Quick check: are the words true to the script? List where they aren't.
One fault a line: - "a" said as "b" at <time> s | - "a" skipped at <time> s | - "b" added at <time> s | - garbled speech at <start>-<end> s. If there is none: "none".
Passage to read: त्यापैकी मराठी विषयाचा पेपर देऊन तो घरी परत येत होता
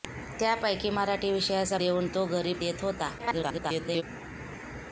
- "पेपर" skipped at 1.8 s
- "परत" skipped at 2.5 s
- garbled speech at 3.2-4.0 s